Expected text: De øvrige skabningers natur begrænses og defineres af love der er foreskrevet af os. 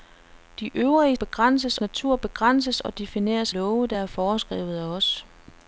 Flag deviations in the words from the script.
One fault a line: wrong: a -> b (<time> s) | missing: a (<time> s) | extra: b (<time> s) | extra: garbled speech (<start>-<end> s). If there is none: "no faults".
wrong: skabningers -> begrænses (1.1 s)
missing: af (3.5 s)